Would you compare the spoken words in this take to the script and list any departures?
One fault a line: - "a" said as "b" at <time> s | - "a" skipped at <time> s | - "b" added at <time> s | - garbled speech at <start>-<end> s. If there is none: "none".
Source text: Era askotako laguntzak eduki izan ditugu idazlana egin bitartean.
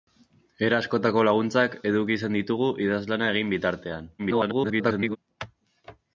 - garbled speech at 4.2-5.2 s